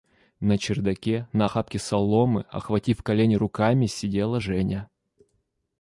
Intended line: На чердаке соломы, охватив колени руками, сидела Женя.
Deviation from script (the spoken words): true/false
true